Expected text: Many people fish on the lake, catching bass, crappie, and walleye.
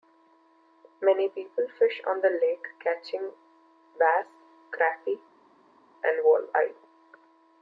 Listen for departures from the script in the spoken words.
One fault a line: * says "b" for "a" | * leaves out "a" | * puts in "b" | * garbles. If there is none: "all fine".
all fine